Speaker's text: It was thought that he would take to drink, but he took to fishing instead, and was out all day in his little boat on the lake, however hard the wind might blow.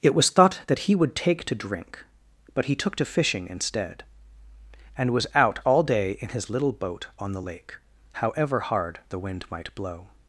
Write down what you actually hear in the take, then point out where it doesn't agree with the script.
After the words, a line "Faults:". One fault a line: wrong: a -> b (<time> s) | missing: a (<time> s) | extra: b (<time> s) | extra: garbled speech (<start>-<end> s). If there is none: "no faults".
It was thought that he would take to drink, but he took to fishing instead, and was out all day in his little boat on the lake, however hard the wind might blow.
Faults:
no faults